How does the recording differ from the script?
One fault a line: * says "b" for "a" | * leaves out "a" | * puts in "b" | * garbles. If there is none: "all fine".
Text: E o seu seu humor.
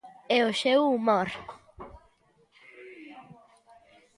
* leaves out "seu"